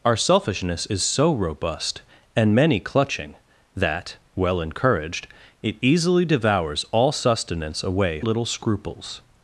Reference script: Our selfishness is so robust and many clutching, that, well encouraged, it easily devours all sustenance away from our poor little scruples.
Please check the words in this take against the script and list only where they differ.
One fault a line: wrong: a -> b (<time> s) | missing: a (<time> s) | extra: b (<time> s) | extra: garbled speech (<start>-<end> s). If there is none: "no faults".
missing: from our poor (8.2 s)